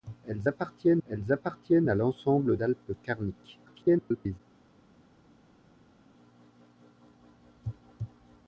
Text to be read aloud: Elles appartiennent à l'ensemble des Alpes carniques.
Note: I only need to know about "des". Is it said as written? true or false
false